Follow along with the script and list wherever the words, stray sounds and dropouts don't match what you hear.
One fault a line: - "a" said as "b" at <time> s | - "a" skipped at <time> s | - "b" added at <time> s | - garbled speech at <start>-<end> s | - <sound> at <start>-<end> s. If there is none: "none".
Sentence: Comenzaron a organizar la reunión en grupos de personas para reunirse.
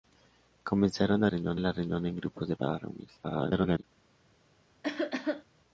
- "organizar" said as "reunión" at 1.3 s
- "personas" skipped at 2.6 s
- garbled speech at 3.2-3.8 s
- cough at 4.8-5.4 s